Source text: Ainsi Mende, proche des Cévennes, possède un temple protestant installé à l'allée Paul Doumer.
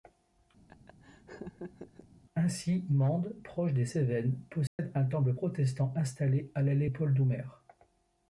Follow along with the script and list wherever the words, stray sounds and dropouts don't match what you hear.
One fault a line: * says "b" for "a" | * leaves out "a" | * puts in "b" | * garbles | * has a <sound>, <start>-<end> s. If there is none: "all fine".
* has a laugh, 0.7-2.1 s
* has a dropout, 4.7-4.8 s